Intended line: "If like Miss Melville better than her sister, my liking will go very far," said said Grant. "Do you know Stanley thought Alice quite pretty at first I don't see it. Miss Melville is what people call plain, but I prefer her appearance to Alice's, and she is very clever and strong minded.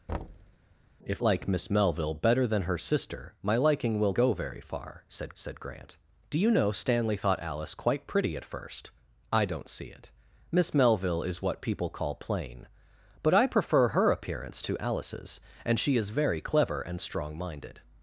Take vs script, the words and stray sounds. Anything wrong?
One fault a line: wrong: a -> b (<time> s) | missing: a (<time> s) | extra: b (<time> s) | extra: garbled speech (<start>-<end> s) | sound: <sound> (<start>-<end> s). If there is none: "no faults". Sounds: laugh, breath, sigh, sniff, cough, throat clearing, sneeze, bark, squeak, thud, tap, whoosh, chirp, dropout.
sound: thud (0.1-0.6 s)